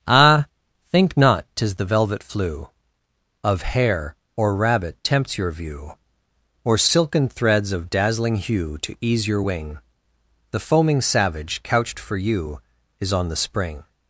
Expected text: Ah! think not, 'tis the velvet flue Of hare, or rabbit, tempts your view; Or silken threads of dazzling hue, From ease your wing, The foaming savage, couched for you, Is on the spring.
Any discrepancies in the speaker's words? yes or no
yes